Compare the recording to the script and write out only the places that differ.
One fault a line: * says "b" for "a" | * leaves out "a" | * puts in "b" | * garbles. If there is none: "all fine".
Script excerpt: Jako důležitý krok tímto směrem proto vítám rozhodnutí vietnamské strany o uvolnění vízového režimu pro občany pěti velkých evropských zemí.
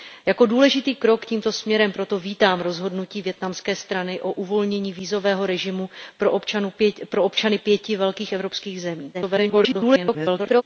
* garbles